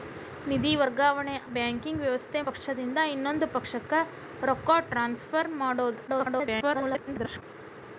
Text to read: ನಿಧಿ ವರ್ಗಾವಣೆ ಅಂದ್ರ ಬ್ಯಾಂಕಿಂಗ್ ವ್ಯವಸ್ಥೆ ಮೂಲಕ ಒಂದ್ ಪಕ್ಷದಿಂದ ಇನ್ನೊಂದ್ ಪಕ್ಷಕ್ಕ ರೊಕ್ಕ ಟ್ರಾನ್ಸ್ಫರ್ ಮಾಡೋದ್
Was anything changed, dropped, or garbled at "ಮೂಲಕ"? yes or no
yes